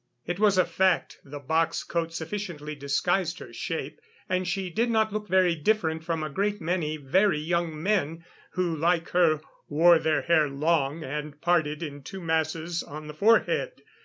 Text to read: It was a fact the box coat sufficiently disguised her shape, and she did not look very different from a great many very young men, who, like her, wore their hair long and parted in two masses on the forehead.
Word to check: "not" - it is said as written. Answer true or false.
true